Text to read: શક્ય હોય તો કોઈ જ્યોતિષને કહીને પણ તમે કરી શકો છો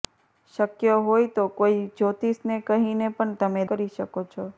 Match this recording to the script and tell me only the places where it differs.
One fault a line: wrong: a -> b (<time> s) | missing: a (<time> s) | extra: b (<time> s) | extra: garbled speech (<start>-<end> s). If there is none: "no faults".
no faults